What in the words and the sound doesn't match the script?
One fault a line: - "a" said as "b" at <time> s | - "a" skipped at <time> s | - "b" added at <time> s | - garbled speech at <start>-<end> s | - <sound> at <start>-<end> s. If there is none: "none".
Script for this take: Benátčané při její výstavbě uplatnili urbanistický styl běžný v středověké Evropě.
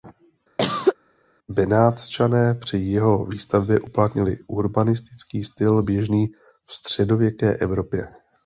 - cough at 0.6-1.0 s
- "její" said as "jeho" at 2.8 s